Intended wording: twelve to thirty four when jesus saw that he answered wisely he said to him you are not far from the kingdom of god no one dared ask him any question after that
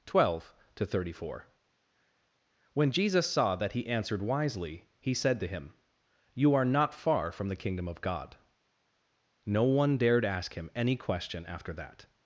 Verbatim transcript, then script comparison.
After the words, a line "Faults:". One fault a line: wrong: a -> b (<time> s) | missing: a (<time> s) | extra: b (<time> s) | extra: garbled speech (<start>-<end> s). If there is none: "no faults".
twelve to thirty four when jesus saw that he answered wisely he said to him you are not far from the kingdom of god no one dared ask him any question after that
Faults:
no faults